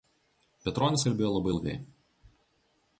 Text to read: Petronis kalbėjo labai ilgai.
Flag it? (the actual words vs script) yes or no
no